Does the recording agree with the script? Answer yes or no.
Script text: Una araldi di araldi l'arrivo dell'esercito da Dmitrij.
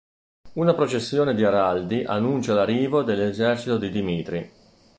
no